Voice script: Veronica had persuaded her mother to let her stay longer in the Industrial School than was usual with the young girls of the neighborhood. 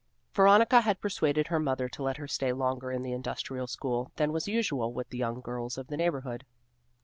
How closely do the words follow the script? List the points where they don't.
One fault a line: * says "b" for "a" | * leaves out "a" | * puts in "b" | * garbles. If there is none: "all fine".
all fine